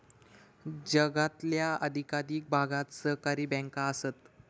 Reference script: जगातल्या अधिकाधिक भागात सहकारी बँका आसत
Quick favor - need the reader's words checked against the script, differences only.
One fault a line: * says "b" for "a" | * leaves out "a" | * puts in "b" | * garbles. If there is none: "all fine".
all fine